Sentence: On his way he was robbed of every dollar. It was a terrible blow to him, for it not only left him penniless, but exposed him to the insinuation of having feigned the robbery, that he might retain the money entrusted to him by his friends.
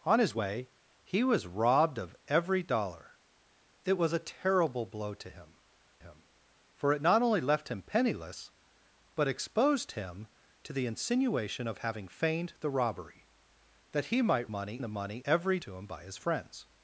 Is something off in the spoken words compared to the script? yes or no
yes